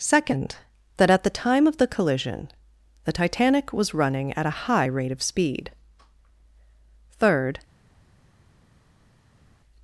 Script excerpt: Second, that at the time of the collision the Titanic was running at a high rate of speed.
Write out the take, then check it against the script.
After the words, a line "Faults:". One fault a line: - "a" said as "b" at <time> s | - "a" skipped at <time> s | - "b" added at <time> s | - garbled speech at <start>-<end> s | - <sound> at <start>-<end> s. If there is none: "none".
Second, that at the time of the collision the Titanic was running at a high rate of speed. Third
Faults:
- "Third" added at 7.1 s